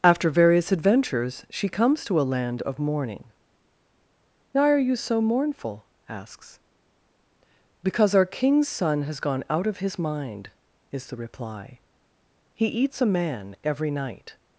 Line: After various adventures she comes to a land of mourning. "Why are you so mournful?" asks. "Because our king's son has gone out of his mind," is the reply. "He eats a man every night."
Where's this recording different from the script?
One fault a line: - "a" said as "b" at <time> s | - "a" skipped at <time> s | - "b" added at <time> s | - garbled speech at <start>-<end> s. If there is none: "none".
none